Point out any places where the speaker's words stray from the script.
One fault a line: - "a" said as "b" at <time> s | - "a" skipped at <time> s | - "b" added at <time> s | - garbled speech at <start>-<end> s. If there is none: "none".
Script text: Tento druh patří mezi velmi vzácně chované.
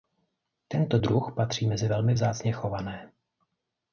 none